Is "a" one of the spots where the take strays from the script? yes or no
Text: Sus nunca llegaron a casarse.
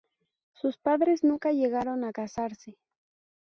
no